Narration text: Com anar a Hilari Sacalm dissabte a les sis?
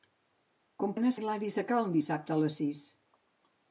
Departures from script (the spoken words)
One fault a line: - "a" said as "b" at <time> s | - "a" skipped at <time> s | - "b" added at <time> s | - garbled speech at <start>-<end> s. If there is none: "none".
none